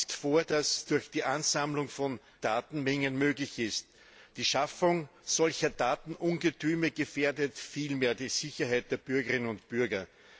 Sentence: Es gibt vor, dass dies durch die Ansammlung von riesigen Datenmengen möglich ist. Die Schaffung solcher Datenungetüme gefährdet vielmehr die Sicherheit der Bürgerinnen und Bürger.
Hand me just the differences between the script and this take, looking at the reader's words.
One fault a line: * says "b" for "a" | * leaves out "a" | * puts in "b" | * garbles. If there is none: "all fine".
* leaves out "gibt"
* leaves out "dies"
* leaves out "riesigen"